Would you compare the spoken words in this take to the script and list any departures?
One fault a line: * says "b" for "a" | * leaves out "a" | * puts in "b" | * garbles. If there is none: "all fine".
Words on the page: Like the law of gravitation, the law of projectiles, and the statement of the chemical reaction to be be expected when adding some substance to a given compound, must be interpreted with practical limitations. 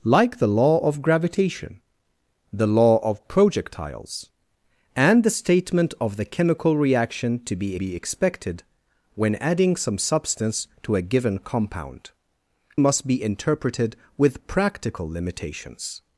all fine